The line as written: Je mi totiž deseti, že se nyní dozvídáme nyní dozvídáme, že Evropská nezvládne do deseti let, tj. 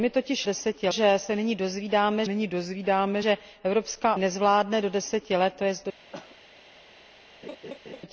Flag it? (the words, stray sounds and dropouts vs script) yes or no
yes